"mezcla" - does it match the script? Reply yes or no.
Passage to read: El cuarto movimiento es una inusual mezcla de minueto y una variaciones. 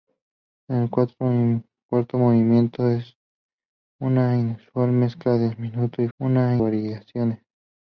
yes